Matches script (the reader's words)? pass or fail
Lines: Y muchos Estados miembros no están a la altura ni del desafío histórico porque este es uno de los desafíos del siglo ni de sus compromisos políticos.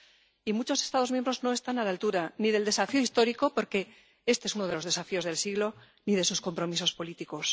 pass